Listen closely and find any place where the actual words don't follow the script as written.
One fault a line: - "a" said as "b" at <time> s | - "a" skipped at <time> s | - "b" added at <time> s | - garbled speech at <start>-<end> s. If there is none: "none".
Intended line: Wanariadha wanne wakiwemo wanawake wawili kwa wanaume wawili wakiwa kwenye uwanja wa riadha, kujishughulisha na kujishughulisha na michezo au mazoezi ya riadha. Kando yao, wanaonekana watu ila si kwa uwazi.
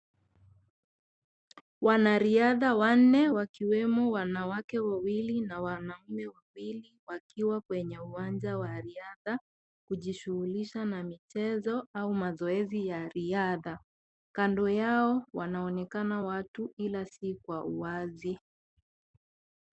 - "kwa" said as "na" at 5.4 s
- "kujishughulisha na" skipped at 11.0 s